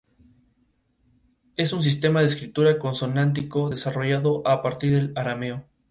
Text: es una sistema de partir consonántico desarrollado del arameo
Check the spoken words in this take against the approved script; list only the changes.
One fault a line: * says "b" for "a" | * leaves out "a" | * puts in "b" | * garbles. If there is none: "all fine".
* says "un" for "una"
* says "escritura" for "partir"
* puts in "a partir"